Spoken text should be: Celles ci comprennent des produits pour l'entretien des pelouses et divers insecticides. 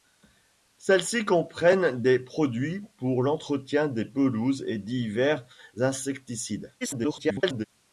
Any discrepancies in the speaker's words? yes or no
yes